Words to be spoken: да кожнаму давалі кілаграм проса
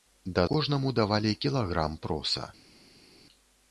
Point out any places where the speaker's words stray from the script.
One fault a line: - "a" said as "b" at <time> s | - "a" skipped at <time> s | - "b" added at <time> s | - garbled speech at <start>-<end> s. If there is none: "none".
none